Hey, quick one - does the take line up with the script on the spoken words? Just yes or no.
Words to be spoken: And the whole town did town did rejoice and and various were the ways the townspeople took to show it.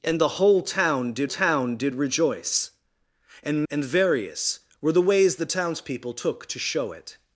yes